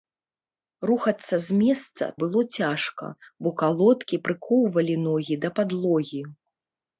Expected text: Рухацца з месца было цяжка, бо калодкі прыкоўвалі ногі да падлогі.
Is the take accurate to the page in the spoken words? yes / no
yes